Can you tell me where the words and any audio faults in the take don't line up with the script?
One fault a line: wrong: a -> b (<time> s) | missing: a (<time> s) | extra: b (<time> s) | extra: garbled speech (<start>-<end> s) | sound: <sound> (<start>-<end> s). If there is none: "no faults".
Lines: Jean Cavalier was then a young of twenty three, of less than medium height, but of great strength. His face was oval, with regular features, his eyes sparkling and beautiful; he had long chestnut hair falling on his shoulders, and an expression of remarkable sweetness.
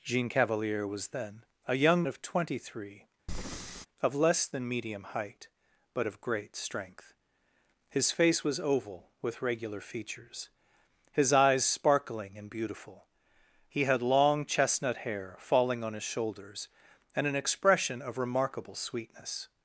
sound: breath (3.3-3.9 s)